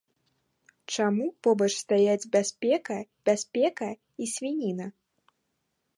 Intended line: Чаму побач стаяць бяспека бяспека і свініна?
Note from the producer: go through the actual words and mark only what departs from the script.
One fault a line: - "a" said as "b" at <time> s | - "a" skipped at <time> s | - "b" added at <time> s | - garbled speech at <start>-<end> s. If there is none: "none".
none